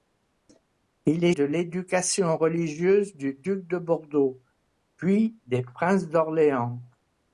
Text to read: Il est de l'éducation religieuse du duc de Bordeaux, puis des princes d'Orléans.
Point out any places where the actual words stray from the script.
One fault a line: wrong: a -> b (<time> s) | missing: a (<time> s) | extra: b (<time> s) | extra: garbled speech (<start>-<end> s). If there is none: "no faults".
no faults